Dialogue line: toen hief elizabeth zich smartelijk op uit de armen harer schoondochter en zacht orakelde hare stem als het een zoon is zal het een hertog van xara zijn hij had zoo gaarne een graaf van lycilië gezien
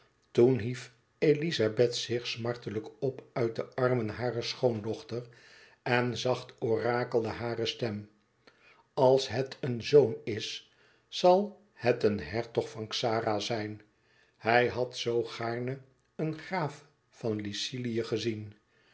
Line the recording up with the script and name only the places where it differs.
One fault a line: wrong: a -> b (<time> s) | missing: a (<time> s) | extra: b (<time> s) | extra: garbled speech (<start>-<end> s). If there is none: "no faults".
no faults